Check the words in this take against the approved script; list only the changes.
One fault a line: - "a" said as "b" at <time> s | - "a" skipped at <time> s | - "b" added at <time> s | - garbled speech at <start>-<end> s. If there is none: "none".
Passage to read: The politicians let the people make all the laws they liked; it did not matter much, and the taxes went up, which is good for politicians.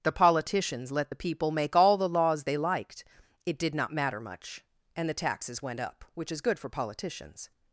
none